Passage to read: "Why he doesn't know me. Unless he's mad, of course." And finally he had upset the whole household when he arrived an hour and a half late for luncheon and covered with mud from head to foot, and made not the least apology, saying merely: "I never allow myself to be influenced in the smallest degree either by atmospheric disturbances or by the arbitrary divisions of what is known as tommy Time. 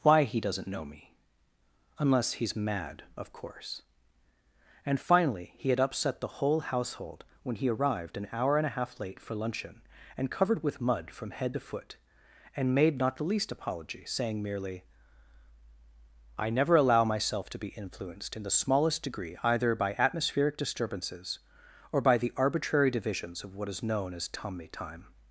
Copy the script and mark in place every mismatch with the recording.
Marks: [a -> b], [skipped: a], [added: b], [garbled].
"Why he doesn't know me. Unless he's mad, of course." And finally he had upset the whole household when he arrived an hour and a half late for luncheon and covered with mud from head to foot, and made not the least apology, saying merely: "I never allow myself to be influenced in the smallest degree either by atmospheric disturbances or by the arbitrary divisions of what is known as tommy Time.